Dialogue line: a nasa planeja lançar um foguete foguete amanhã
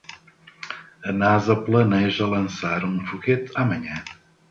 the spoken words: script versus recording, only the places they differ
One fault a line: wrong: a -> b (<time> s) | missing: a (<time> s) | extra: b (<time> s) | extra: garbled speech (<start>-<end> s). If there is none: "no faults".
missing: foguete (3.5 s)